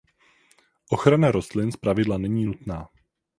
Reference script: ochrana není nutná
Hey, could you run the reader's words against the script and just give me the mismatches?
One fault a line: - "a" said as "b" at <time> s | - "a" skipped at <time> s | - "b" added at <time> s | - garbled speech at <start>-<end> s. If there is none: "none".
- "rostlin zpravidla" added at 1.3 s